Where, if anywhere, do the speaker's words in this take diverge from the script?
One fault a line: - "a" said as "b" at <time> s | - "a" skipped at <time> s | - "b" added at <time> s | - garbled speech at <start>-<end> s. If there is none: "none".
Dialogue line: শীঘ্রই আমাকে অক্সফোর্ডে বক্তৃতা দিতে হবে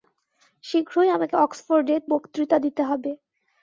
none